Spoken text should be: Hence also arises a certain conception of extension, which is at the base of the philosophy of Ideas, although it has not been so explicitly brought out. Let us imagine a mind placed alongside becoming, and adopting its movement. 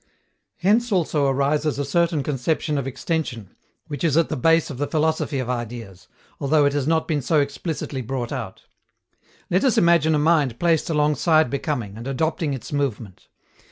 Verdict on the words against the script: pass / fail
pass